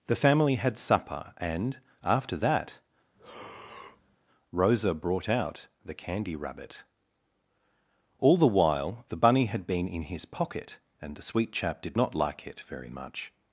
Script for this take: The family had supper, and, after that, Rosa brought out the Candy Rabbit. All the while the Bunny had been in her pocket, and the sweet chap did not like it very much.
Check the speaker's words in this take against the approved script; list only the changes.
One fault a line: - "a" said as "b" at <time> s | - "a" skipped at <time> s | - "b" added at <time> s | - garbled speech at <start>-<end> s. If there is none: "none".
- "her" said as "his" at 10.0 s